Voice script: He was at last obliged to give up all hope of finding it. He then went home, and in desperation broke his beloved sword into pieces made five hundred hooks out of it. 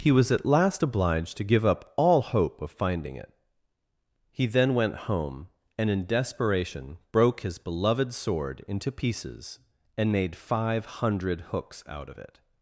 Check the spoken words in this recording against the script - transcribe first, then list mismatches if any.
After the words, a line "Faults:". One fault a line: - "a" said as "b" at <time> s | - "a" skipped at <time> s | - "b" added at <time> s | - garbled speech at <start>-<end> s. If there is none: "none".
He was at last obliged to give up all hope of finding it. He then went home, and in desperation broke his beloved sword into pieces and made five hundred hooks out of it.
Faults:
- "and" added at 10.0 s